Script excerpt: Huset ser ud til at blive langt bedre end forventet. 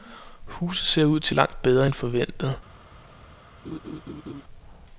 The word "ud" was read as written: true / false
true